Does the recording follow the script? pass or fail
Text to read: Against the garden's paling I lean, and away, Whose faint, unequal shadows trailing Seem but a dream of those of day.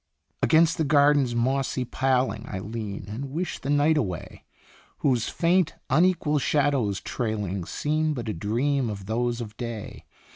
fail